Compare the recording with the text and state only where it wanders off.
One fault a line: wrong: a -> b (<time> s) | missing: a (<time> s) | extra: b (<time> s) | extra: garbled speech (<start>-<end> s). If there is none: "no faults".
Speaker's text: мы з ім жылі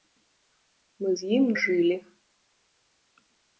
no faults